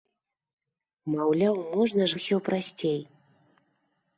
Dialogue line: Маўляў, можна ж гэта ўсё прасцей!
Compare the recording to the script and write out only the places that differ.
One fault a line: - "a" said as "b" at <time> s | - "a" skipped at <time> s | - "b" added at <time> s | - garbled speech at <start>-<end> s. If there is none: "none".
- "гэта" skipped at 2.2 s